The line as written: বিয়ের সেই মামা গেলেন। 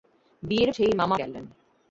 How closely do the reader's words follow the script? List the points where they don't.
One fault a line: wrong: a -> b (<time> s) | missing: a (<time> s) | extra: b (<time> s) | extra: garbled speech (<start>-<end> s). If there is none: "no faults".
no faults